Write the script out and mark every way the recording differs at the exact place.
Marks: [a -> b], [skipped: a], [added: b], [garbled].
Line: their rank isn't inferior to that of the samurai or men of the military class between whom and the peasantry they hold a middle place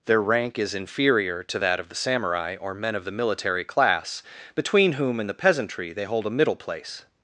their rank [isn't -> is] inferior to that of the samurai or men of the military class between whom and the peasantry they hold a middle place